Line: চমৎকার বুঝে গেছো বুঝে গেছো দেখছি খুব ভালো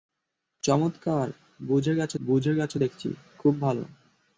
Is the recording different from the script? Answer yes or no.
no